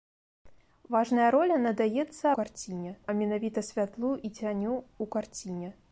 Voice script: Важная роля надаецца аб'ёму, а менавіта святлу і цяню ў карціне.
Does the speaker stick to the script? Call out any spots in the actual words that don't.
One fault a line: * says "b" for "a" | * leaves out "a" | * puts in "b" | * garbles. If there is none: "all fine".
* says "карціне" for "аб'ёму"